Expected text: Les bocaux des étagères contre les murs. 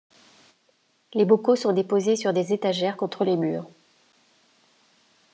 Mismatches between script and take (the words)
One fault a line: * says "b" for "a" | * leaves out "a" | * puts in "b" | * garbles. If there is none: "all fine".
* puts in "sont déposés sur"